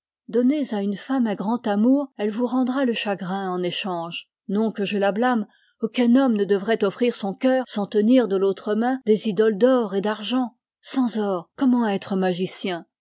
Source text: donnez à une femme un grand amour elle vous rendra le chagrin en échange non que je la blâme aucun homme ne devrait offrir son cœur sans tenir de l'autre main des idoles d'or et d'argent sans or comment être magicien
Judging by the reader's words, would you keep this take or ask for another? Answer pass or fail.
pass